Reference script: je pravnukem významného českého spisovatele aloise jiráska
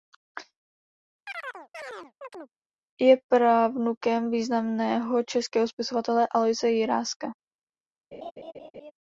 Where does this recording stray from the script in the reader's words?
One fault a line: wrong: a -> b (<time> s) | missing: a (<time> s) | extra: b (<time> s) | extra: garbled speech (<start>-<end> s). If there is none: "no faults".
no faults